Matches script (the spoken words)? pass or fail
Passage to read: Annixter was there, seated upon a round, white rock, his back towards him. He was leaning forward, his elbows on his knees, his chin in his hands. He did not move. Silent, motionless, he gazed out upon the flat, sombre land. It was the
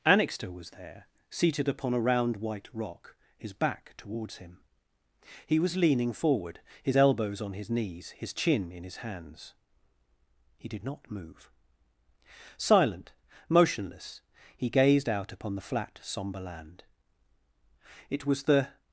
pass